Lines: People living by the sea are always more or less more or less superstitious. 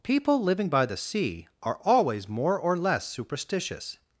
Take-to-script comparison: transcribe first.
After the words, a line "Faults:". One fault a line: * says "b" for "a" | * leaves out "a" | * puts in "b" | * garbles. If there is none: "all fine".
People living by the sea are always more or less superstitious.
Faults:
* leaves out "more or less"